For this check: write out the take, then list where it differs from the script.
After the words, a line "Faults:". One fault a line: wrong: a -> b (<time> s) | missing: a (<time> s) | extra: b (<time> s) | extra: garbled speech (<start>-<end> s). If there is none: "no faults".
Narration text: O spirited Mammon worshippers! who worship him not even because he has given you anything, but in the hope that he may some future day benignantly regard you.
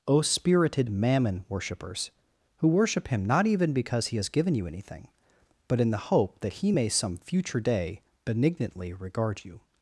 O spirited Mammon worshippers! who worship him not even because he has given you anything, but in the hope that he may some future day benignantly regard you.
Faults:
no faults